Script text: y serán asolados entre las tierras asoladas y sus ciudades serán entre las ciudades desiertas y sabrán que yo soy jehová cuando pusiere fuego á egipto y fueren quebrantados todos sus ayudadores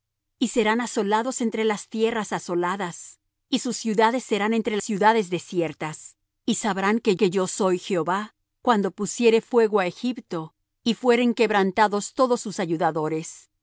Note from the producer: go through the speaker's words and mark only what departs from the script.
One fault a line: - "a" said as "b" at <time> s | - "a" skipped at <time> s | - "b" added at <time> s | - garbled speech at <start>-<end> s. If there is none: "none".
- "las" skipped at 4.8 s
- "que" added at 7.1 s